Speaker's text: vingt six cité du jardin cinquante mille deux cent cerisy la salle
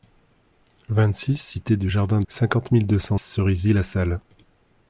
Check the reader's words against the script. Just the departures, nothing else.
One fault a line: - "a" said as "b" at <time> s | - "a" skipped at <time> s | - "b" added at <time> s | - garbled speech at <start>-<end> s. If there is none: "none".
none